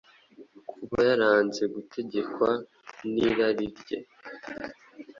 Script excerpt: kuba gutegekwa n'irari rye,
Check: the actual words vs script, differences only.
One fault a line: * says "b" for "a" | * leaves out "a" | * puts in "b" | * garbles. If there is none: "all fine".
* puts in "yaranze"